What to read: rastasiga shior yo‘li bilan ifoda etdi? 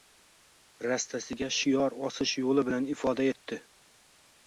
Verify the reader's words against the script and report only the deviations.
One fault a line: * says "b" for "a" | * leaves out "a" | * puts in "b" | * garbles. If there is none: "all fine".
* puts in "osish"